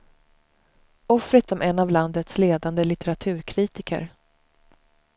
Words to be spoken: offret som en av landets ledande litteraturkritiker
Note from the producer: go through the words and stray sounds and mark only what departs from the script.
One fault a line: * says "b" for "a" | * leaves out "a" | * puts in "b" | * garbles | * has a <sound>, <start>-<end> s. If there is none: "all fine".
all fine